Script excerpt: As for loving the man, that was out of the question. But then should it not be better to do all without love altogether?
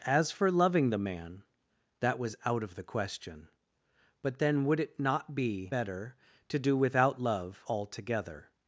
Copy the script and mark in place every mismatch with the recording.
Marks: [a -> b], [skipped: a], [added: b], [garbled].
As for loving the man, that was out of the question. But then [should -> would] it not be better to do [skipped: all] without love altogether?